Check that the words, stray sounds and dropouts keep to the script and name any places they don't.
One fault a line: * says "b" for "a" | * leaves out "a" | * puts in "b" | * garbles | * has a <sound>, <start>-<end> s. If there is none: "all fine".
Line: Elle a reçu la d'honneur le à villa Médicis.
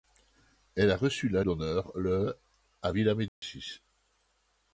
* has a dropout, 3.3-3.4 s